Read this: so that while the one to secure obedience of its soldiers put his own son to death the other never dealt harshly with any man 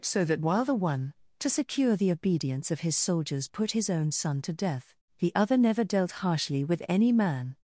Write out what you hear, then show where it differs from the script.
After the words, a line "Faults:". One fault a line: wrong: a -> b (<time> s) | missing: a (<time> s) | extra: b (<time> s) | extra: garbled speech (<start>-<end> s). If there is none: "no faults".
so that while the one to secure the obedience of his soldiers put his own son to death the other never dealt harshly with any man
Faults:
extra: the (2.0 s)
wrong: its -> his (2.8 s)